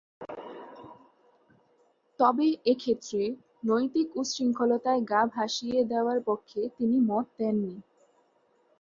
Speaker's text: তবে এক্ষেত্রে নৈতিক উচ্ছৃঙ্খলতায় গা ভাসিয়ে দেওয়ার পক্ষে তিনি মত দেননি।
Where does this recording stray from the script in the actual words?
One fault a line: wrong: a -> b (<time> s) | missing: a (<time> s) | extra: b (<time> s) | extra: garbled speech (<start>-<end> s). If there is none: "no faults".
no faults